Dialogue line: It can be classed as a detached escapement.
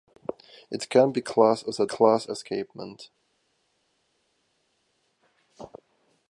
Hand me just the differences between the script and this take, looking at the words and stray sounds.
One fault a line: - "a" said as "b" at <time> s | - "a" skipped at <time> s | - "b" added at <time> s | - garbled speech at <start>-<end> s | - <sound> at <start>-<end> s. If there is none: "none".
- "detached" said as "classed" at 1.8 s